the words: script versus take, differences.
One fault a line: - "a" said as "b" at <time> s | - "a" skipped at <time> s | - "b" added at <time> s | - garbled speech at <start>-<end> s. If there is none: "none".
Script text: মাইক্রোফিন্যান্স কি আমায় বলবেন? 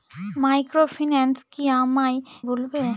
none